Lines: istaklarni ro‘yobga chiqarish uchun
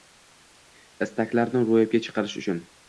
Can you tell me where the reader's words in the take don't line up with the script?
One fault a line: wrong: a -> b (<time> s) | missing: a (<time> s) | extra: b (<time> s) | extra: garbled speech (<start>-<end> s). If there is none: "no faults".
no faults